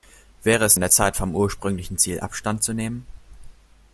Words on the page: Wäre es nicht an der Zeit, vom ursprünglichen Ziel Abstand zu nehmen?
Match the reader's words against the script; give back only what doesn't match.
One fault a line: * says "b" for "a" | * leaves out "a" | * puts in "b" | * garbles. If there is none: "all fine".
* leaves out "nicht"